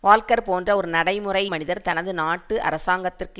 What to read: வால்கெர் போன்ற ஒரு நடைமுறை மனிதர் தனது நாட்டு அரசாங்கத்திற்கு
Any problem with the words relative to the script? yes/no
no